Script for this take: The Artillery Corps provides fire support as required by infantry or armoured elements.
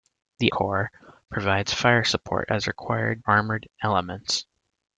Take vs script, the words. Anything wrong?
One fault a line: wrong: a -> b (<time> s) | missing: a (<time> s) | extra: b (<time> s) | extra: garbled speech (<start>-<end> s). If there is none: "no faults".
missing: Artillery (0.5 s)
missing: by infantry or (3.2 s)